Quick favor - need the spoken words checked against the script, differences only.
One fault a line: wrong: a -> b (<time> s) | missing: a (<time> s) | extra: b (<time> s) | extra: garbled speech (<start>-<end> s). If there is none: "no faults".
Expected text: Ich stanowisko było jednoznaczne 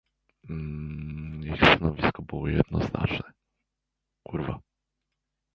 no faults